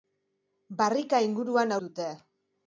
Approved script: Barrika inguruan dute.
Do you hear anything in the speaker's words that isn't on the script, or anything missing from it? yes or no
no